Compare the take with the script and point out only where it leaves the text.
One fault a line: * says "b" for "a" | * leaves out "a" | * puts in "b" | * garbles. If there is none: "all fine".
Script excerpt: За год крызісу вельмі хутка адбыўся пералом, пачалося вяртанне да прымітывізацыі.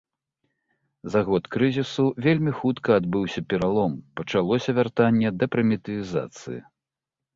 all fine